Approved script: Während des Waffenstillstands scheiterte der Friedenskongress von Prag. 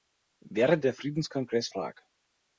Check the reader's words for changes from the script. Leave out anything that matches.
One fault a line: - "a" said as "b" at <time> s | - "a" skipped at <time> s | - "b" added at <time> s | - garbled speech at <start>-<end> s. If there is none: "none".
- "des Waffenstillstands scheiterte" skipped at 0.8 s
- "von" skipped at 1.7 s